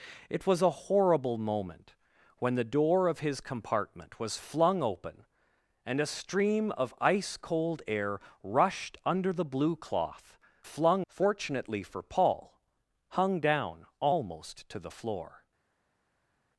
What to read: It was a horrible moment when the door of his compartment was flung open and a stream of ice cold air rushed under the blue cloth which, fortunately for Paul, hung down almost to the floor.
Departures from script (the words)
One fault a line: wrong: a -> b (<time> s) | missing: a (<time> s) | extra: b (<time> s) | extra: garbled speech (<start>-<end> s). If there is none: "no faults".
wrong: which -> flung (10.6 s)